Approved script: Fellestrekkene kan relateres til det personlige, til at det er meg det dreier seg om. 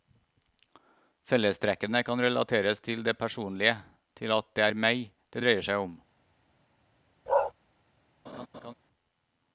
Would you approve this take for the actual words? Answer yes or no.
yes